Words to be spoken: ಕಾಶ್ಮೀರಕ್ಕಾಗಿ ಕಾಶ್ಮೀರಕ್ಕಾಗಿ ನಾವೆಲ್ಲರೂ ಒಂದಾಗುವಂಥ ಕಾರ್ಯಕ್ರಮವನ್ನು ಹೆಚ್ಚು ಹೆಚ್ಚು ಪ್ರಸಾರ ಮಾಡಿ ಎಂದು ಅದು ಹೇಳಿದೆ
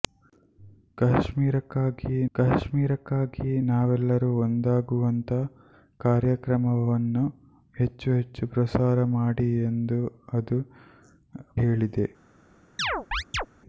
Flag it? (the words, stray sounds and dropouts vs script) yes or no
yes